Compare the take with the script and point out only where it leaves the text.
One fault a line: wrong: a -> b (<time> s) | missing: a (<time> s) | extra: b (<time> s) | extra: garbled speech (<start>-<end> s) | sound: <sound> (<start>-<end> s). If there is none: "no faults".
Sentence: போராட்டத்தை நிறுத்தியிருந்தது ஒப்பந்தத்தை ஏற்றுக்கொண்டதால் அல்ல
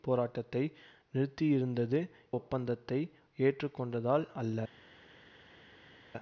no faults